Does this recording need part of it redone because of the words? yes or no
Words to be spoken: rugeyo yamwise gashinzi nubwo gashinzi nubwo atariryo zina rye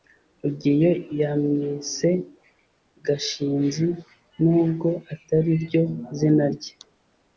yes